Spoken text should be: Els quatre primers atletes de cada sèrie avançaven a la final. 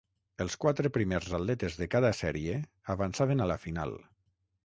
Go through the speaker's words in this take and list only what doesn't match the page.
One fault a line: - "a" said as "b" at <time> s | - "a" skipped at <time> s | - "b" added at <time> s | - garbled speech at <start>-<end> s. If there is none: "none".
none